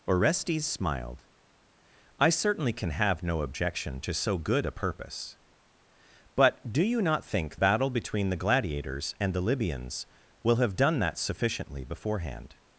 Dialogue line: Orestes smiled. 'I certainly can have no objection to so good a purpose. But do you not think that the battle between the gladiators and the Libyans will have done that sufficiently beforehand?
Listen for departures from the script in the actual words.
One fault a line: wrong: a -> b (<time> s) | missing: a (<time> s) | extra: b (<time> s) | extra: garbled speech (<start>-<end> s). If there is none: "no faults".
missing: that the (7.6 s)